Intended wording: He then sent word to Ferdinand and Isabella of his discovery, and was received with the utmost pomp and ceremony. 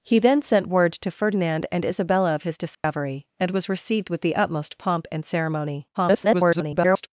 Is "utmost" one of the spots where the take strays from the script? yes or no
no